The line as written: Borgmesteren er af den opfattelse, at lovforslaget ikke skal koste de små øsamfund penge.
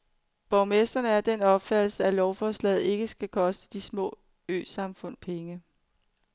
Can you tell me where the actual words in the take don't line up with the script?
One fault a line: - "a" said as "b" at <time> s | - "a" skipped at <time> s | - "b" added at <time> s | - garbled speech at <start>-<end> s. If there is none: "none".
none